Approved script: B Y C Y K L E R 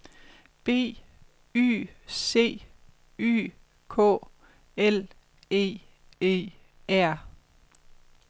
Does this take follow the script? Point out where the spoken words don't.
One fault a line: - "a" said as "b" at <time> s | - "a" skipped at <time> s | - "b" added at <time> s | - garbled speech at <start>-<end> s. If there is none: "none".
- "E" added at 6.2 s